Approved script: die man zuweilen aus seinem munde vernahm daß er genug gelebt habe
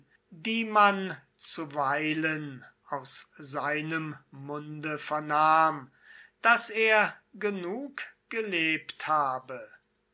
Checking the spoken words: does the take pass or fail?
pass